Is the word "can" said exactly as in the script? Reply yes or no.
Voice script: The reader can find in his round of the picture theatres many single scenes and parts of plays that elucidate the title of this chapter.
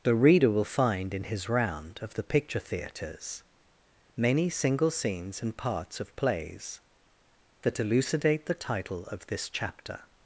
no